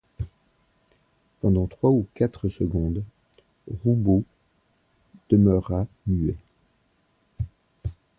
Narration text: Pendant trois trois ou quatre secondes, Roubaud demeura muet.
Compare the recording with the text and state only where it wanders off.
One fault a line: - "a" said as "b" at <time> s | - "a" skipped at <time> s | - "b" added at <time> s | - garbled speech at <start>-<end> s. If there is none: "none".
- "trois" skipped at 1.9 s